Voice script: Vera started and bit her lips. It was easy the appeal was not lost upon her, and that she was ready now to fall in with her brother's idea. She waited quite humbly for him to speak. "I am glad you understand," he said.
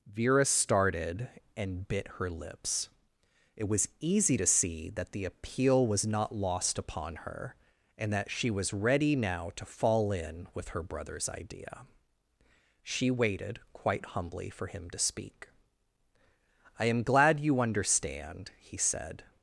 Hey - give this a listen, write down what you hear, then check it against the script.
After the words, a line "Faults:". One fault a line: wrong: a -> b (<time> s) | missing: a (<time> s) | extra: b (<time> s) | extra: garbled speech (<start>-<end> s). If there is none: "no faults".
Vera started and bit her lips. It was easy to see that the appeal was not lost upon her, and that she was ready now to fall in with her brother's idea. She waited quite humbly for him to speak. "I am glad you understand," he said.
Faults:
extra: to see that (4.4 s)